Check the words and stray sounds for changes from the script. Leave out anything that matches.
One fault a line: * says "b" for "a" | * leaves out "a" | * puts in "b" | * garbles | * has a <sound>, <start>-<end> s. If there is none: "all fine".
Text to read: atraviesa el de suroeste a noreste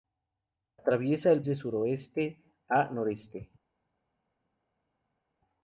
all fine